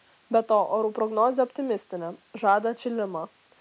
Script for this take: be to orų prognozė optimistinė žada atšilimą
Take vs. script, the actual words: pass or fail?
pass